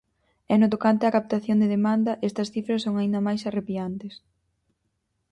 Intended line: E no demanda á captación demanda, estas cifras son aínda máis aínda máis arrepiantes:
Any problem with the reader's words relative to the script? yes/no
yes